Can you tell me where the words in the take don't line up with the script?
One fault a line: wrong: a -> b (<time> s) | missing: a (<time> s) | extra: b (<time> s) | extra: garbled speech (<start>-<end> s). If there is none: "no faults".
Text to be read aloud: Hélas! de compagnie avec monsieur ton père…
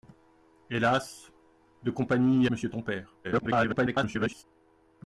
missing: avec (2.5 s)
extra: garbled speech (3.2-4.4 s)